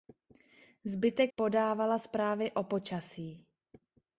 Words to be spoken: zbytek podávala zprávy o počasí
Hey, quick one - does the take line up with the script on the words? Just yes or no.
yes